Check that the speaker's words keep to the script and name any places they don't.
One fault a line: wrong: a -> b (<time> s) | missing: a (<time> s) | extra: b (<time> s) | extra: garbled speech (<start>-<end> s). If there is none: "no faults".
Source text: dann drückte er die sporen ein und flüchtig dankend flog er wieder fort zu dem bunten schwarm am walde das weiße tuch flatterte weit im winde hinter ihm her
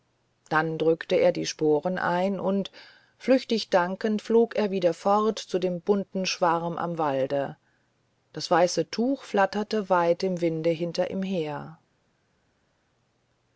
no faults